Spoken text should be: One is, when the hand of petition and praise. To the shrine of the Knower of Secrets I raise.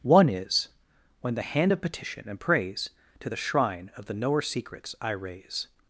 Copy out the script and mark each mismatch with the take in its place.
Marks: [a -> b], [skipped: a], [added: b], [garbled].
One is, when the hand of petition and praise. To the shrine of the Knower [skipped: of] Secrets I raise.